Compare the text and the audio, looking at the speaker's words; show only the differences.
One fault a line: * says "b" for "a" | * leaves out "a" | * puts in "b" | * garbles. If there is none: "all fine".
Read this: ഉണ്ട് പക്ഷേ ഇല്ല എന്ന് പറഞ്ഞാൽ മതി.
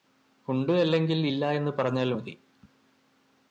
* says "അല്ലെങ്കിൽ" for "പക്ഷേ"